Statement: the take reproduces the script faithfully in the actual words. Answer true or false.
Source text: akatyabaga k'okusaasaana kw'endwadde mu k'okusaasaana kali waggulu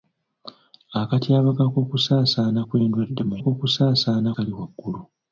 true